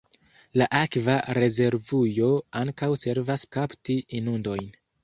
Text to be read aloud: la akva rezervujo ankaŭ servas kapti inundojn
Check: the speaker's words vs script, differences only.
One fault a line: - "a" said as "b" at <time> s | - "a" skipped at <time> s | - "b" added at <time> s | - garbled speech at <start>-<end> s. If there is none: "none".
none